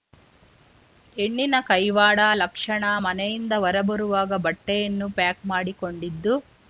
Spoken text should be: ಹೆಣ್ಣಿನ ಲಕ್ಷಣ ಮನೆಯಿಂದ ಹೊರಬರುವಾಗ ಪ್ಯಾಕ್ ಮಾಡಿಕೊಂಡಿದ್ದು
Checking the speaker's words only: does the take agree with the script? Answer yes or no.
no